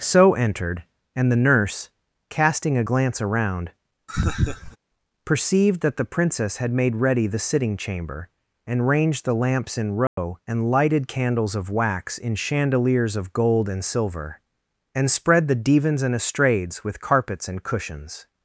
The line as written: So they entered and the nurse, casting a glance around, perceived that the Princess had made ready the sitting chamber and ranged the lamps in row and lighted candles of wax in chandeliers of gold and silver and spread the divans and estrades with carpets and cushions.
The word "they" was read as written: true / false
false